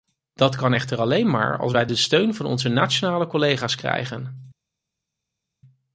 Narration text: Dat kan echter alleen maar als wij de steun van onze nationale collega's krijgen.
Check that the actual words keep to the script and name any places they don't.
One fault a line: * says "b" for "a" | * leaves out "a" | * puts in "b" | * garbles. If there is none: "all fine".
all fine